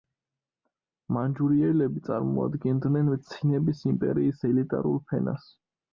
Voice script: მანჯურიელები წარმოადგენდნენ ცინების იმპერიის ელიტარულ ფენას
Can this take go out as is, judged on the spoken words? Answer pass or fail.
pass